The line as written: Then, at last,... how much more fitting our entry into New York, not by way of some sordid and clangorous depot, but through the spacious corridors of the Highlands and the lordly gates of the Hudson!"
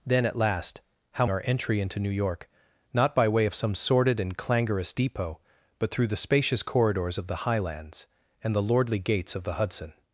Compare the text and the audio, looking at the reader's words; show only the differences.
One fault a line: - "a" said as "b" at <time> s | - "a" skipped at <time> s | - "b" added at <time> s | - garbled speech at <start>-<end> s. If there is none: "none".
- "much more fitting" skipped at 1.2 s